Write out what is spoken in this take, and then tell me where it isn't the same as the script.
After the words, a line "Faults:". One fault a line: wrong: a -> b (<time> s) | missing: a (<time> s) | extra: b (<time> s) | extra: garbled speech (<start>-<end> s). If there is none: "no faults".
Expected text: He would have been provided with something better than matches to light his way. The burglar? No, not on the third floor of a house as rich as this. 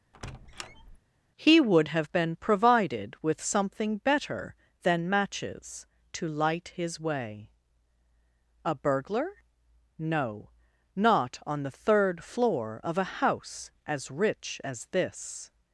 He would have been provided with something better than matches to light his way. A burglar? No, not on the third floor of a house as rich as this.
Faults:
wrong: The -> A (8.6 s)